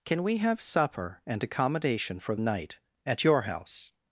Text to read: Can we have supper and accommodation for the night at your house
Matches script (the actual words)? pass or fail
fail